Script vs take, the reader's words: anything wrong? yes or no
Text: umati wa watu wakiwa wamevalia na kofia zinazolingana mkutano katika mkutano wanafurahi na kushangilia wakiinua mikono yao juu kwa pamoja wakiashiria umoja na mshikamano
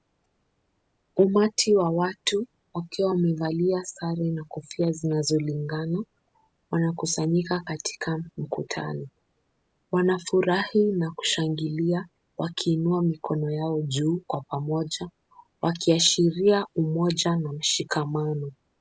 yes